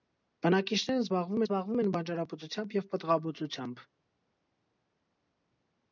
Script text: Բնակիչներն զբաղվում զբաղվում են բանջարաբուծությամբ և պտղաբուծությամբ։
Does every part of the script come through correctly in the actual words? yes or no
yes